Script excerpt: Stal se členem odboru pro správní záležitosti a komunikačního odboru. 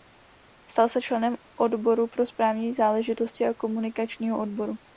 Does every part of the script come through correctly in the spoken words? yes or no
yes